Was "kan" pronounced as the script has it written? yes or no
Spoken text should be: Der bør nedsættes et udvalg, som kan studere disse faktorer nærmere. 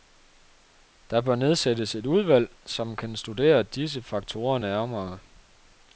yes